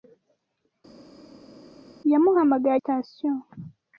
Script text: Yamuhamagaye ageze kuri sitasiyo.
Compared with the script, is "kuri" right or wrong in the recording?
wrong